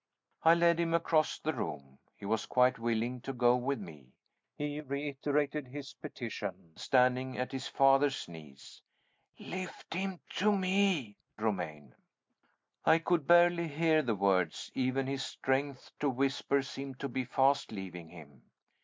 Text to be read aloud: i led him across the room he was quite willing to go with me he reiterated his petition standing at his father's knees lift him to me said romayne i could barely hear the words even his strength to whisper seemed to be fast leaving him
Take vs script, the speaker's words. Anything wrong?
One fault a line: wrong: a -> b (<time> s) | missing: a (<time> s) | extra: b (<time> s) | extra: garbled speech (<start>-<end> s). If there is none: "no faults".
missing: said (11.2 s)